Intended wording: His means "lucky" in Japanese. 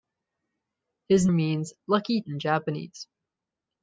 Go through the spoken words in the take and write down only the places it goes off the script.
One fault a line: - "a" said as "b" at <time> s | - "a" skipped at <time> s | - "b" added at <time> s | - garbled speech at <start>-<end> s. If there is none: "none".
none